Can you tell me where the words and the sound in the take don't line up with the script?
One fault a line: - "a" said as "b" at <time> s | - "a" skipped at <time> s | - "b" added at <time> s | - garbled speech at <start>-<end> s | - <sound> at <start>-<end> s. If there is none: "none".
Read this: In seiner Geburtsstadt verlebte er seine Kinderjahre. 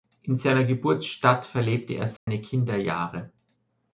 - dropout at 2.2-2.3 s